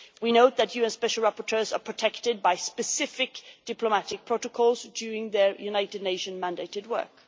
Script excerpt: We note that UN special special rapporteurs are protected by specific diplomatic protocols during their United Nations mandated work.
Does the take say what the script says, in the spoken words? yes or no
no